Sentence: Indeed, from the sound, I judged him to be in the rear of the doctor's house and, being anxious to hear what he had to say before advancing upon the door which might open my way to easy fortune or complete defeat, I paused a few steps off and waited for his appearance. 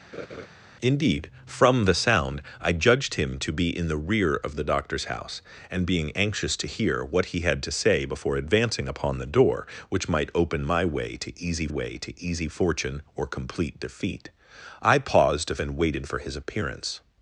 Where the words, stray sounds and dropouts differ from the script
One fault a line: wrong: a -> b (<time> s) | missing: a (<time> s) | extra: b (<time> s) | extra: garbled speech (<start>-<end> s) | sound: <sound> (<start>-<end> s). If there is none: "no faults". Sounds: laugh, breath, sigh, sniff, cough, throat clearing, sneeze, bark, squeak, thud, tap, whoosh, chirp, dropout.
sound: laugh (0.1-0.5 s)
extra: way to easy (11.7 s)
missing: few steps off (15.6 s)